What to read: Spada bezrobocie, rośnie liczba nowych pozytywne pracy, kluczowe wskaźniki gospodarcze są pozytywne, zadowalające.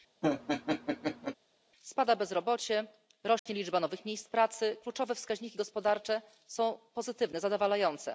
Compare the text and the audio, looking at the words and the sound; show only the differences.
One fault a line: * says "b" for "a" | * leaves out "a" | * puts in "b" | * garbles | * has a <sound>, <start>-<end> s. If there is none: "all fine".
* has a laugh, 0.2-1.3 s
* has a dropout, 3.4-3.5 s
* says "miejsc" for "pozytywne"